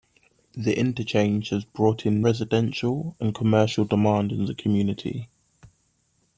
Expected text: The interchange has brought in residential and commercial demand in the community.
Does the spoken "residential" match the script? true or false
true